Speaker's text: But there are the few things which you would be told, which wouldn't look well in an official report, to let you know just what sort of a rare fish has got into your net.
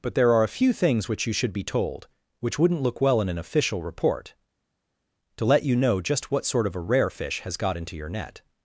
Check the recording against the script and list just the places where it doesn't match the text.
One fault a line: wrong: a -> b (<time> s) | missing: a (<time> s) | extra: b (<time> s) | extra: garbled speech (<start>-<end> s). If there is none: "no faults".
wrong: the -> a (0.4 s)
wrong: would -> should (1.3 s)